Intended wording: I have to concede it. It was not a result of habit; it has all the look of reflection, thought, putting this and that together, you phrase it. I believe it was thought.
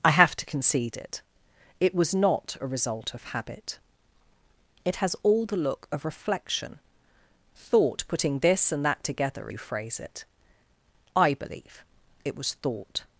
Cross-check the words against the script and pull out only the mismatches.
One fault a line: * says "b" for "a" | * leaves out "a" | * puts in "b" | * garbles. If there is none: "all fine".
all fine